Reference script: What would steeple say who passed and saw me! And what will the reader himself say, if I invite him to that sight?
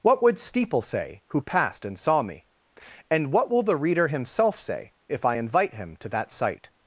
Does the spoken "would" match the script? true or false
true